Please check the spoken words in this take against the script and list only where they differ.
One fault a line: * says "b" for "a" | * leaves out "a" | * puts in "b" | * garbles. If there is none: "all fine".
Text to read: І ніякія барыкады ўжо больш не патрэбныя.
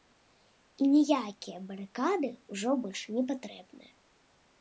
all fine